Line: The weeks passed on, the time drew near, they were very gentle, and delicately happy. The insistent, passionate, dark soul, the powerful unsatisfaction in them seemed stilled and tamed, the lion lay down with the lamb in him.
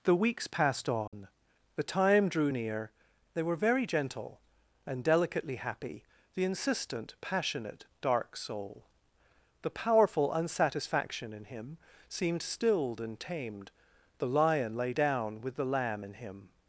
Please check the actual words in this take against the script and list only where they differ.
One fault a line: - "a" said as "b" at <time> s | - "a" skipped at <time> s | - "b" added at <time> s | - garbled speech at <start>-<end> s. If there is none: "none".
- "them" said as "him" at 11.4 s